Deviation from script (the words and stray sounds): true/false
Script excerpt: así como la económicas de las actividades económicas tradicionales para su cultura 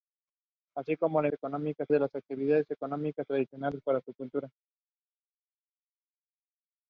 false